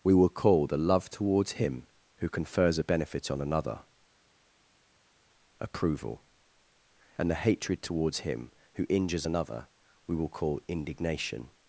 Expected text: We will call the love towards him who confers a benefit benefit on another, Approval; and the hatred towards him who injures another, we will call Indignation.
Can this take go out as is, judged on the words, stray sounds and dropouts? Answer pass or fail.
fail